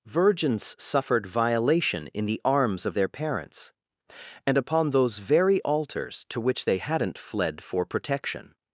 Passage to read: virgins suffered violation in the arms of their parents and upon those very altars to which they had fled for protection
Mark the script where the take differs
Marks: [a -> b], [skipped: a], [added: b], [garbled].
virgins suffered violation in the arms of their parents and upon those very altars to which they [had -> hadn't] fled for protection